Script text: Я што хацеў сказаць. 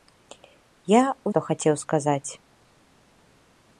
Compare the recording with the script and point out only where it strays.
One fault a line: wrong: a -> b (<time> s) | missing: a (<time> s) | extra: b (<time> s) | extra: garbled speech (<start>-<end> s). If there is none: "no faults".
no faults